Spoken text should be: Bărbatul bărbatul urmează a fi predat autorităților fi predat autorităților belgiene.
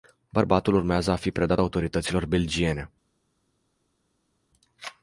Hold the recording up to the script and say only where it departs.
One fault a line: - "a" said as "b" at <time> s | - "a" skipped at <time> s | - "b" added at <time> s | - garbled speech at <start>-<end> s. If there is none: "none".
- "bărbatul" skipped at 0.7 s
- "fi predat autorităților" skipped at 2.3 s